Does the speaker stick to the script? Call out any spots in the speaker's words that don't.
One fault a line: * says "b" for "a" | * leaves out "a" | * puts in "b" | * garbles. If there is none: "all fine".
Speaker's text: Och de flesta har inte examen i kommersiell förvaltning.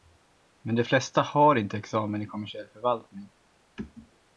* says "Men" for "Och"